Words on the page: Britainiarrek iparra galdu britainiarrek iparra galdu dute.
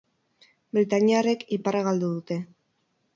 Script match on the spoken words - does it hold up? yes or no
no